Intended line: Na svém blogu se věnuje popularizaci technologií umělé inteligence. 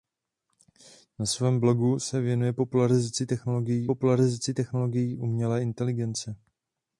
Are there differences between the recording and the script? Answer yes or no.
yes